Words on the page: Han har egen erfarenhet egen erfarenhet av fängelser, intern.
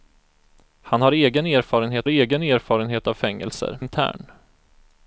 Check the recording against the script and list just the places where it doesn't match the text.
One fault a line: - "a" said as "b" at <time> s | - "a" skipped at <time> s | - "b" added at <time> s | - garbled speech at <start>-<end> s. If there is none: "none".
none